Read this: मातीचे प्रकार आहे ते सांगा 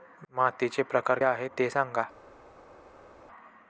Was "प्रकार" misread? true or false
false